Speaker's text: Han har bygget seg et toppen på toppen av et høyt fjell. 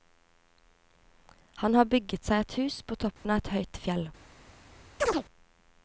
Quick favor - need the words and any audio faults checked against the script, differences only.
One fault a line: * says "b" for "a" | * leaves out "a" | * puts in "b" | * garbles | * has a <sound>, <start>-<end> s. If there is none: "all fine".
* says "hus" for "toppen"
* has a dropout, 3.2-3.2 s
* has a chirp, 5.0-5.2 s